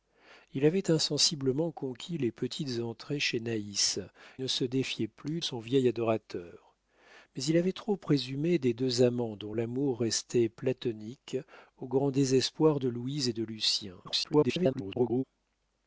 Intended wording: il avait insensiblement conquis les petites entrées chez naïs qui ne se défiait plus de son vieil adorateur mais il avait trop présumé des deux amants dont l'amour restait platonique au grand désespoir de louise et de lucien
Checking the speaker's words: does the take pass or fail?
fail